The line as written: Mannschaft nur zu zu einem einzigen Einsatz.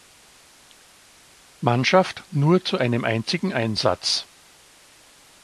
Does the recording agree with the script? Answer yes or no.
no